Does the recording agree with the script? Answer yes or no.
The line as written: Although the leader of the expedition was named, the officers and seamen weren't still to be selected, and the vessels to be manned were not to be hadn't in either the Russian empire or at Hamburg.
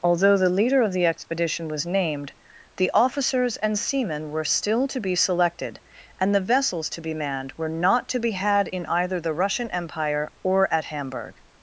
no